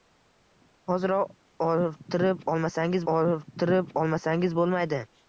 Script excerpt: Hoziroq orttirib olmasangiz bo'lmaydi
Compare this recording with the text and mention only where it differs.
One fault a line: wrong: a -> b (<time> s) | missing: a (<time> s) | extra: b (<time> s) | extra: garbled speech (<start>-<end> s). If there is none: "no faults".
extra: orttirib olmasangiz (3.1 s)